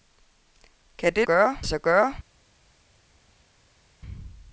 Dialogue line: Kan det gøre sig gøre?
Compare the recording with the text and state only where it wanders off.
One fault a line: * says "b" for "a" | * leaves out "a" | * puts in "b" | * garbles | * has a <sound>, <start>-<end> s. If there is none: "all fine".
all fine